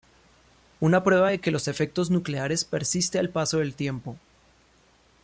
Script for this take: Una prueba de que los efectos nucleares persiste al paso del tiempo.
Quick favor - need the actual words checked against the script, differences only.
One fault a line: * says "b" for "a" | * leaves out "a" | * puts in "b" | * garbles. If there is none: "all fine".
all fine